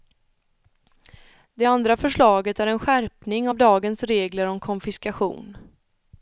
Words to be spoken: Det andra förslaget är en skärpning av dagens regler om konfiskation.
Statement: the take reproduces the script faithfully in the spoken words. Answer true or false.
true